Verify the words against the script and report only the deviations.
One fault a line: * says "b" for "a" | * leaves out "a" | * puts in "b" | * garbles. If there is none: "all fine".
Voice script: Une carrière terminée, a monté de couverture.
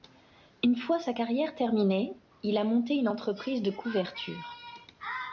* puts in "fois sa"
* puts in "il"
* puts in "une entreprise"